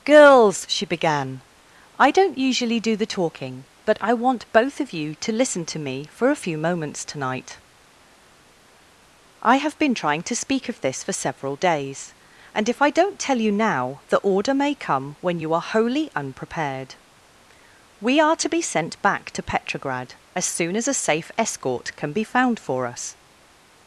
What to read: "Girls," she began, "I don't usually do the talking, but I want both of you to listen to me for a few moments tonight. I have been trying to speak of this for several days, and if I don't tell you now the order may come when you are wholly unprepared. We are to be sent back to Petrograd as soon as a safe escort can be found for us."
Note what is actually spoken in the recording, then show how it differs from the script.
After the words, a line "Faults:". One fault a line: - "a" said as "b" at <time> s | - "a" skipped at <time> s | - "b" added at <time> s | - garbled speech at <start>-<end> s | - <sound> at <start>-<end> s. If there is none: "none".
"Girls," she began, "I don't usually do the talking, but I want both of you to listen to me for a few moments tonight. I have been trying to speak of this for several days, and if I don't tell you now the order may come when you are wholly unprepared. We are to be sent back to Petrograd as soon as a safe escort can be found for us."
Faults:
none